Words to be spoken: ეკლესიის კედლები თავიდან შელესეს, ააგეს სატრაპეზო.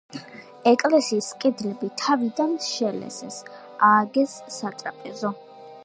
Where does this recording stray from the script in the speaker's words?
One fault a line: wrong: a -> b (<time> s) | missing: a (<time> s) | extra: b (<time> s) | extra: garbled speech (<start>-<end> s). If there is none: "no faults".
no faults